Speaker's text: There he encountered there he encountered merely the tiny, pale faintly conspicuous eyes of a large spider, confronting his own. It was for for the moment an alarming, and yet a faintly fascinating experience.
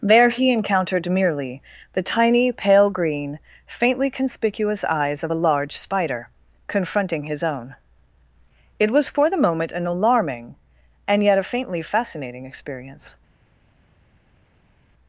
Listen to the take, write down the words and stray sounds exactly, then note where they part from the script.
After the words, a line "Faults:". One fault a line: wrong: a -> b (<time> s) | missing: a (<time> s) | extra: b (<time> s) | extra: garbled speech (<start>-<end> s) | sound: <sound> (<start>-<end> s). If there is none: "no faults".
There he encountered merely the tiny, pale green, faintly conspicuous eyes of a large spider, confronting his own. It was for the moment an alarming, and yet a faintly fascinating experience.
Faults:
missing: there he encountered (1.1 s)
extra: green (2.9 s)
missing: for (9.3 s)